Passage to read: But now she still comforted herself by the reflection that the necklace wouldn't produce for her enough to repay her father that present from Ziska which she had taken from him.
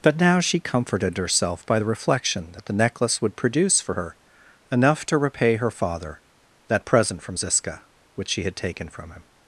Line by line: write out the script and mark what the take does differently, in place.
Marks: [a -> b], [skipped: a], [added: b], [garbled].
But now she [skipped: still] comforted herself by the reflection that the necklace [wouldn't -> would] produce for her enough to repay her father that present from Ziska which she had taken from him.